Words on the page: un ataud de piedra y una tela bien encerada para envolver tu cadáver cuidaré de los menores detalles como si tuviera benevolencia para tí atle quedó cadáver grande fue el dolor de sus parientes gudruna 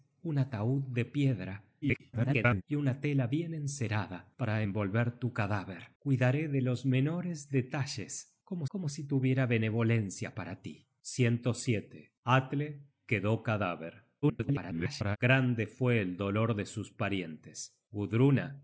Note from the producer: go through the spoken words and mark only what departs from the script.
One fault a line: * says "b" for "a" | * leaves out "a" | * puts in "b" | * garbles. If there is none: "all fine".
* garbles
* puts in "como"
* garbles